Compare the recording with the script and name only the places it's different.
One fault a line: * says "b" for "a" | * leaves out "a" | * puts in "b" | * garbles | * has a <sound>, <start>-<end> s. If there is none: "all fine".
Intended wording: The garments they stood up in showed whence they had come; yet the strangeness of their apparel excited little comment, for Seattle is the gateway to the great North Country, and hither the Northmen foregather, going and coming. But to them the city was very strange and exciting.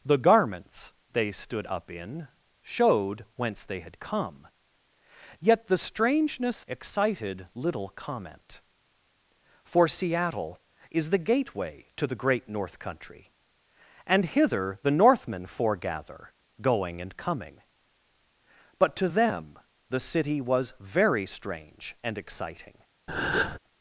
* leaves out "of their apparel"
* has a breath, 23.1-23.6 s